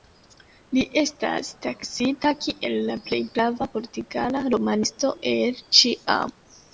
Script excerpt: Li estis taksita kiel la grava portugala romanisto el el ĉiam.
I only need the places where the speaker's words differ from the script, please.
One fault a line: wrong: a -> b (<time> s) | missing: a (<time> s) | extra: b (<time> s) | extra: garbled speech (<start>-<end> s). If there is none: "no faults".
wrong: estis -> estas (1.0 s)
extra: plej (3.1 s)
missing: el (5.6 s)